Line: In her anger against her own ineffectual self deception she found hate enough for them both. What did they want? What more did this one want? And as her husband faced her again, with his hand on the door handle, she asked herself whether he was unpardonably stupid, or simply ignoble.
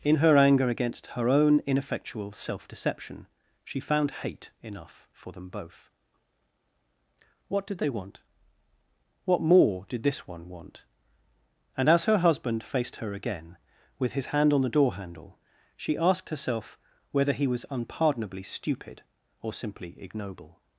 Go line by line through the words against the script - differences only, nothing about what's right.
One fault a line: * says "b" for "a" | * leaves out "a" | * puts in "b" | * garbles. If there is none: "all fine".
all fine